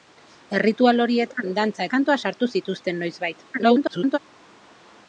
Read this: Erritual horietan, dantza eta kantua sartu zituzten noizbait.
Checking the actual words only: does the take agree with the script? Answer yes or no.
no